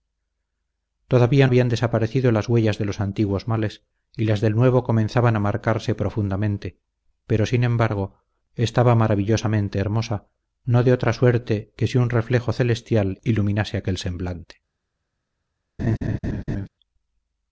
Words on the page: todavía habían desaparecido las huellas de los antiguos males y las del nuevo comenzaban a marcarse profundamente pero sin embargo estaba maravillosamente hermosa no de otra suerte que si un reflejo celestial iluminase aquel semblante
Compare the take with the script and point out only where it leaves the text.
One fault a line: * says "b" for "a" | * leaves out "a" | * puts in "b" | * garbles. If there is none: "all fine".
all fine